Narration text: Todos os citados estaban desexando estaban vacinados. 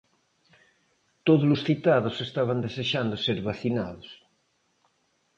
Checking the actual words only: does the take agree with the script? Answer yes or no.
no